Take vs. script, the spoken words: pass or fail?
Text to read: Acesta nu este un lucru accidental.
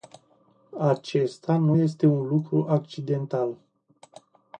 pass